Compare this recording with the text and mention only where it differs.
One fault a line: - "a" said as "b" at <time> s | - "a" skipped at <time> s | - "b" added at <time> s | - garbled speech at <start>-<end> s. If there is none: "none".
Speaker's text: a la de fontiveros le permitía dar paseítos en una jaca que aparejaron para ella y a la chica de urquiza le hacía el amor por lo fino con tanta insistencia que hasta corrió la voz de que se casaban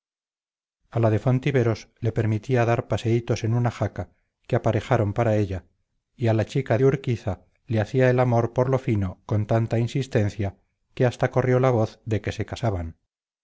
none